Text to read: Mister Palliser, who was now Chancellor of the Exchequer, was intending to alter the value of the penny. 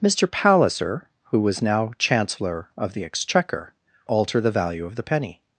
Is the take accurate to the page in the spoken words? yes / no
no